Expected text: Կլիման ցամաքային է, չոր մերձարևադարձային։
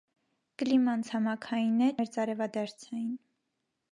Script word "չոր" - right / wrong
wrong